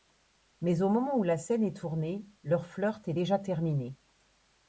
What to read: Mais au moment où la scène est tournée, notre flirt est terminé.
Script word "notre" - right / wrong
wrong